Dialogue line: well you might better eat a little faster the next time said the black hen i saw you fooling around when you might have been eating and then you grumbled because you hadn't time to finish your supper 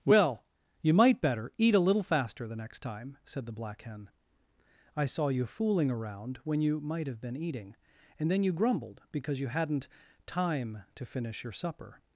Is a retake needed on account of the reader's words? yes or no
no